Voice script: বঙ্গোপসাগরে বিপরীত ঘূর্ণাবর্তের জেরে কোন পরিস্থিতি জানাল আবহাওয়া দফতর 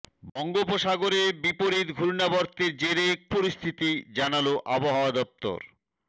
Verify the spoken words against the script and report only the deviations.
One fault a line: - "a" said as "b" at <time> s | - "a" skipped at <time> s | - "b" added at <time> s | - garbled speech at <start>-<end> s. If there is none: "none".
- "কোন" skipped at 3.1 s